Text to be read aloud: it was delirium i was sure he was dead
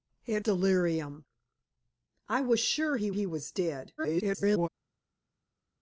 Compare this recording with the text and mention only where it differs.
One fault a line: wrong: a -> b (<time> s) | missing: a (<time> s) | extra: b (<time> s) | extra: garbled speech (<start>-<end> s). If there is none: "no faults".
missing: was (0.5 s)
extra: he (3.1 s)
extra: garbled speech (4.0-4.7 s)